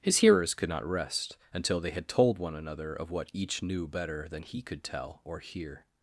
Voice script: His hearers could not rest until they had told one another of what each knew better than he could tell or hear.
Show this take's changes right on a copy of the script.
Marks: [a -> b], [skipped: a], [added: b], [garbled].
His hearers could not rest until they had told one another of what each knew better than he could tell or hear.